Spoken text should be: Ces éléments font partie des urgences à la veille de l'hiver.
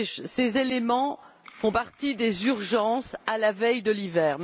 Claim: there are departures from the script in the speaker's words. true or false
false